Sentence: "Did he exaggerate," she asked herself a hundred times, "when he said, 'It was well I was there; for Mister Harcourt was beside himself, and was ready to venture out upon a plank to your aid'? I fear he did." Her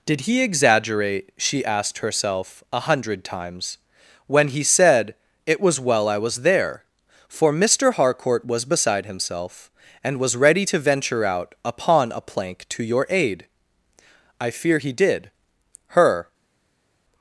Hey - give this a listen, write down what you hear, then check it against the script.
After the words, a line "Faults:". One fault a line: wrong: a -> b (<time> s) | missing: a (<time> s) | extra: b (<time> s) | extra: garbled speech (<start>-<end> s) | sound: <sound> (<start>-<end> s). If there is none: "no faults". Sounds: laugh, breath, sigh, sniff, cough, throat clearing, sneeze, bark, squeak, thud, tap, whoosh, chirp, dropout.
"Did he exaggerate," she asked herself a hundred times, "when he said, 'It was well I was there; for Mister Harcourt was beside himself, and was ready to venture out upon a plank to your aid'? I fear he did." Her
Faults:
no faults